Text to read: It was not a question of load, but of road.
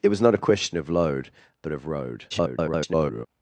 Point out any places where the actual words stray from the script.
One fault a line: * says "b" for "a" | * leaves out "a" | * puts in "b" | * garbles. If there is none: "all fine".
* garbles